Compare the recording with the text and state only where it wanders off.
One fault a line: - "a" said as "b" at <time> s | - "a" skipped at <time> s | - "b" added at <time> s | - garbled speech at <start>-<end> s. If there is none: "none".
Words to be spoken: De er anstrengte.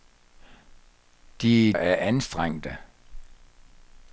none